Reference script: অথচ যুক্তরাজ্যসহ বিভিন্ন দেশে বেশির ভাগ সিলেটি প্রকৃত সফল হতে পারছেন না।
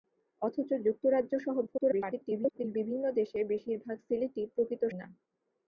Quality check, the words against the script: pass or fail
fail